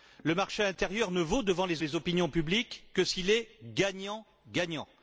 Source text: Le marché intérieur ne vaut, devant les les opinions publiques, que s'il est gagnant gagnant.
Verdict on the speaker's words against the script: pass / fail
pass